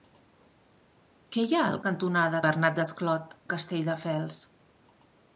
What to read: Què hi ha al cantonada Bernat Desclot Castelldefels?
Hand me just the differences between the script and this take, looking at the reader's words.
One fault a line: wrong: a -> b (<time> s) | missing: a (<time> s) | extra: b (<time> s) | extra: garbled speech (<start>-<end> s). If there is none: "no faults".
no faults